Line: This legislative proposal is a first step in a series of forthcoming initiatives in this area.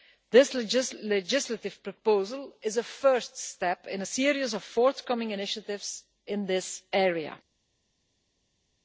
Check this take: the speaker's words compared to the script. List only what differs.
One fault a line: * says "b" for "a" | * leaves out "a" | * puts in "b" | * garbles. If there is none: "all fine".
all fine